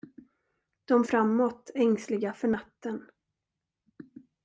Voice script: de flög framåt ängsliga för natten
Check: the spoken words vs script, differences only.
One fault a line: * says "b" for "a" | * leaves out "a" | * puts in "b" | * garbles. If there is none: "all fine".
* leaves out "flög"